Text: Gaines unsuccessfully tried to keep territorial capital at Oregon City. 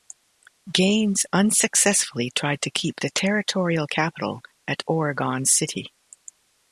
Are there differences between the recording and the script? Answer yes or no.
yes